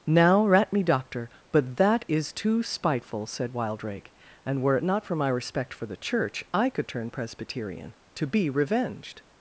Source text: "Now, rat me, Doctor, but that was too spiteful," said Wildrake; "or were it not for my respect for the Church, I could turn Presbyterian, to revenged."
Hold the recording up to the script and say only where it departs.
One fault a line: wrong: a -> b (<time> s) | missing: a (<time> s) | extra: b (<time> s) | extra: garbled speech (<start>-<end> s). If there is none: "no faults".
wrong: was -> is (2.1 s)
wrong: or -> and (4.4 s)
extra: be (8.3 s)